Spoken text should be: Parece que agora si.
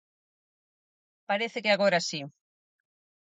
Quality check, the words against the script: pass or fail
pass